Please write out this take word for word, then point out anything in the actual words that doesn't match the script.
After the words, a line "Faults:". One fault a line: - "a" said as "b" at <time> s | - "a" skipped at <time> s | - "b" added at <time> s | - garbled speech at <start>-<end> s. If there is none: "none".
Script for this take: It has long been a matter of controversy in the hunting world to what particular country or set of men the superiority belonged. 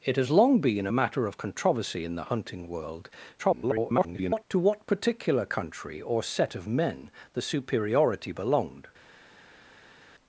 It has long been a matter of controversy in the hunting world [garbled] to what particular country or set of men the superiority belonged.
Faults:
- garbled speech at 3.4-4.4 s